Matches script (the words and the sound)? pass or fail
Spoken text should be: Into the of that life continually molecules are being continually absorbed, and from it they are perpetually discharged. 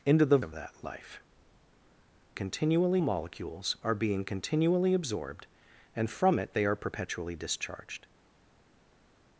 pass